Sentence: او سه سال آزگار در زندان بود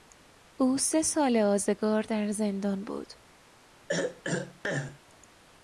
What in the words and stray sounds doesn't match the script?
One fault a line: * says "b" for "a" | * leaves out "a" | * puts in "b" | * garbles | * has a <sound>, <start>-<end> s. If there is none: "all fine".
* has a throat clearing, 3.9-5.0 s